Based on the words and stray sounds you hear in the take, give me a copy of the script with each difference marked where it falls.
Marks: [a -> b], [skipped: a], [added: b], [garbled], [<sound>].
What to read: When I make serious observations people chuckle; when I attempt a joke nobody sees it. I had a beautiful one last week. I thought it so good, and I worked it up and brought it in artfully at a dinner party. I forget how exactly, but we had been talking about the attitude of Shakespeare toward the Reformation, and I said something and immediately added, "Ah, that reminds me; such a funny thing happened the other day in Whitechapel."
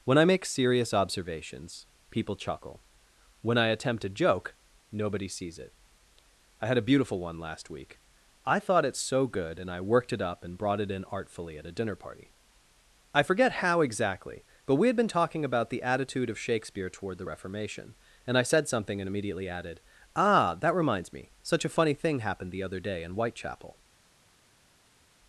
When I make serious observations people chuckle; when I attempt a joke nobody sees it. I had a beautiful one last week. I thought it so good, and I worked it up and brought it in artfully at a dinner party. I forget how exactly, but we had been talking about the attitude of Shakespeare toward the Reformation, and I said something and immediately added, "Ah, that reminds me; such a funny thing happened the other day in Whitechapel."